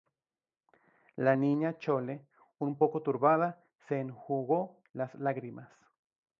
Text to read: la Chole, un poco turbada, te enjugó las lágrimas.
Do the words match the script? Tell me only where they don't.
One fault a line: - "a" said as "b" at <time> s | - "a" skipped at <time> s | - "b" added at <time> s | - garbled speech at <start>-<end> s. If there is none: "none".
- "Niña" added at 1.3 s
- "te" said as "se" at 3.8 s